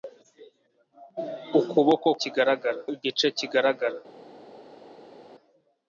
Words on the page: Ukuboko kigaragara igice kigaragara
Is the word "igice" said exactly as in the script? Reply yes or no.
yes